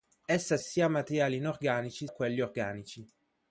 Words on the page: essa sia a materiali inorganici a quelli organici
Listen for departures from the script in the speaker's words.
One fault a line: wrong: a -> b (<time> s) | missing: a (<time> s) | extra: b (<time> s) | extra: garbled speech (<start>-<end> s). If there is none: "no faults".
no faults